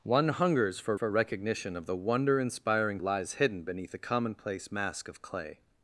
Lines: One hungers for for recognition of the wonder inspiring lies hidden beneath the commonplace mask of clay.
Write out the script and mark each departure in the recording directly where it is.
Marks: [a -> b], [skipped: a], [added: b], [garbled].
One hungers for for recognition of the wonder inspiring lies hidden beneath the commonplace mask of clay.